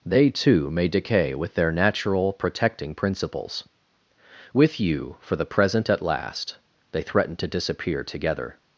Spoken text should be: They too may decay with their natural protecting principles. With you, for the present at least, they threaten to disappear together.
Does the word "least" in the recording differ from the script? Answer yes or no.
yes